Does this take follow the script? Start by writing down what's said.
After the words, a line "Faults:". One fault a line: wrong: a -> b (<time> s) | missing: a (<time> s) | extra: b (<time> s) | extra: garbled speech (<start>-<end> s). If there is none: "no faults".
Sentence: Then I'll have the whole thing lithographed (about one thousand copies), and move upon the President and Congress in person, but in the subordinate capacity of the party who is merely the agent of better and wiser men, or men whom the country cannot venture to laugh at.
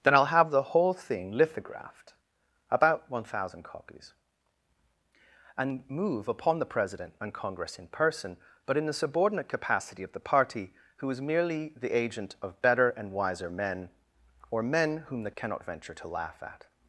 Then I'll have the whole thing lithographed (about one thousand copies), and move upon the President and Congress in person, but in the subordinate capacity of the party who is merely the agent of better and wiser men, or men whom the cannot venture to laugh at.
Faults:
missing: country (15.3 s)